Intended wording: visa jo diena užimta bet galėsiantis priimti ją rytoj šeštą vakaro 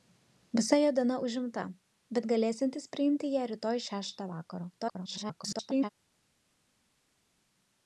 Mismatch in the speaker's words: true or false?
true